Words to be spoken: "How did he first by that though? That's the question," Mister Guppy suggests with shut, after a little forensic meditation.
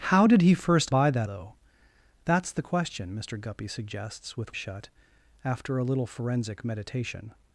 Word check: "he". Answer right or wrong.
right